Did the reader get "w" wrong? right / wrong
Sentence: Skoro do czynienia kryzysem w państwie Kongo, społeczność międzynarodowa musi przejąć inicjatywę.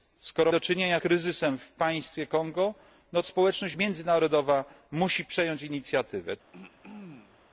right